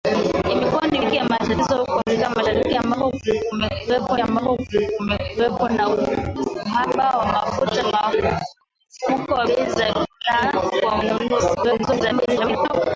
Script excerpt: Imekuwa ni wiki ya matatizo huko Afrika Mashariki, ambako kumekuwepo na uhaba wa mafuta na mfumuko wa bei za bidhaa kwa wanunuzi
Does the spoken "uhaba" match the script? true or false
true